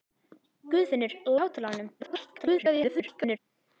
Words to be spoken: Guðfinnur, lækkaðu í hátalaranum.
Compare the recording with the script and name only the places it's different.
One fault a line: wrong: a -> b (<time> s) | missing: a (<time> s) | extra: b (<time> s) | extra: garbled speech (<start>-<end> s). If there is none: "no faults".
missing: lækkaðu (1.1 s)
extra: garbled speech (2.0-3.4 s)